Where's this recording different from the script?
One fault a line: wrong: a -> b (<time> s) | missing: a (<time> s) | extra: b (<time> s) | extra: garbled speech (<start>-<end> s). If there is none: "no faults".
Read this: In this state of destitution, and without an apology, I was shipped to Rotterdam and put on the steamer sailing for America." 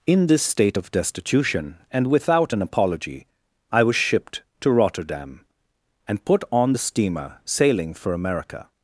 no faults